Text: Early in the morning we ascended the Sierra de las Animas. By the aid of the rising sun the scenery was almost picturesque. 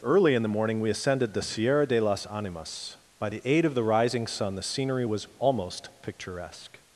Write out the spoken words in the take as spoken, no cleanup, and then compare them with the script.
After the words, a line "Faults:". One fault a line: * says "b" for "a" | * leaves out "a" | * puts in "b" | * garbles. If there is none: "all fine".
Early in the morning we ascended the Sierra de las Animas. By the aid of the rising sun the scenery was almost picturesque.
Faults:
all fine